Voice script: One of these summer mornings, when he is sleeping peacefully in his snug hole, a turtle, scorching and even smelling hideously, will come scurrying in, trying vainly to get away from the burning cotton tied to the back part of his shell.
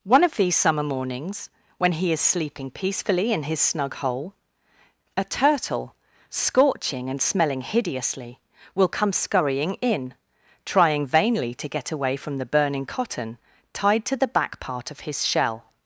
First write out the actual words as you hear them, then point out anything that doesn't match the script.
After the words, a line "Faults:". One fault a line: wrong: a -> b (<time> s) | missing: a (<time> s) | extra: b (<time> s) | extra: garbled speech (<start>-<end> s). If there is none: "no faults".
One of these summer mornings, when he is sleeping peacefully in his snug hole, a turtle, scorching and smelling hideously, will come scurrying in, trying vainly to get away from the burning cotton tied to the back part of his shell.
Faults:
missing: even (7.2 s)